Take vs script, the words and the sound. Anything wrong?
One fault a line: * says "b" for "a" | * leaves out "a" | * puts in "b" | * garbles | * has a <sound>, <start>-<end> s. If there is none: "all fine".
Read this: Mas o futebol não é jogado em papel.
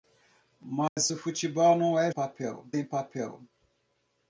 * has a dropout, 0.9-1.0 s
* says "papel" for "jogado"